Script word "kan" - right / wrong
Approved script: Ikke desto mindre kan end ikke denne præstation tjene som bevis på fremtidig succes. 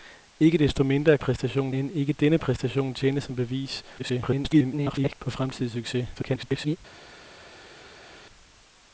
wrong